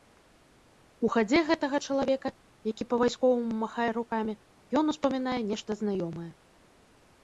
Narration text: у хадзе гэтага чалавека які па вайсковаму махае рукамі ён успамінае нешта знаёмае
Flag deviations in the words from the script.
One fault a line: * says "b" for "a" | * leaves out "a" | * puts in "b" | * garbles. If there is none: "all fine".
all fine